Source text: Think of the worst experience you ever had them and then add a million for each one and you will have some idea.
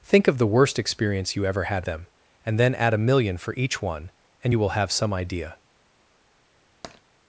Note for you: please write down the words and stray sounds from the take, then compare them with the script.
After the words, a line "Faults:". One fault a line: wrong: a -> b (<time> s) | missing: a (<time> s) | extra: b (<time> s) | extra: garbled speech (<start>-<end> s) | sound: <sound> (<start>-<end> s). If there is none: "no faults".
Think of the worst experience you ever had them and then add a million for each one and you will have some idea.
Faults:
sound: tap (6.8-7.0 s)